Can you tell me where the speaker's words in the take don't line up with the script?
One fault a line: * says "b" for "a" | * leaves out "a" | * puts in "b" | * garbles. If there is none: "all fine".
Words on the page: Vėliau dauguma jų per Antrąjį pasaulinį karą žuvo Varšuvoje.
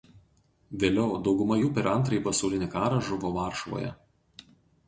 all fine